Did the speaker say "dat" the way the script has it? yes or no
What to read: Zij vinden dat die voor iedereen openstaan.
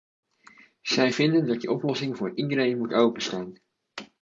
yes